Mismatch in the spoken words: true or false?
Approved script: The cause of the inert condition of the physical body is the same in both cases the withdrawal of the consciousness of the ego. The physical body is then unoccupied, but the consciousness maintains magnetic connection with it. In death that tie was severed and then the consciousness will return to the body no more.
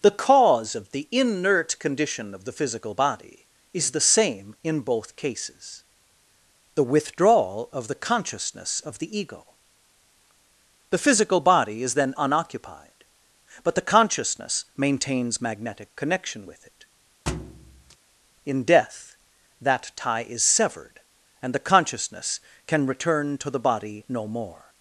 true